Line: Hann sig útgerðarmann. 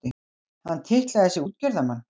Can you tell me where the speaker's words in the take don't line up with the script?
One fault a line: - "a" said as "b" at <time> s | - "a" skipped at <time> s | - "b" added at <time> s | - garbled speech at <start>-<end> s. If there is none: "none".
- "titlaði" added at 0.9 s